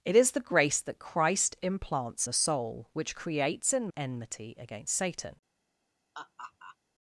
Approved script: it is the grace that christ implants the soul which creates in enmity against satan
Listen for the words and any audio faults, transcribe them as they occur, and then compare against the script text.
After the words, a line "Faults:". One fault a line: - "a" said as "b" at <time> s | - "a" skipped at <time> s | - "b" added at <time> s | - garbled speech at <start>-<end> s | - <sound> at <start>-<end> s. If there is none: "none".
it is the grace that christ implants the soul which creates in enmity against satan
Faults:
- laugh at 6.1-6.8 s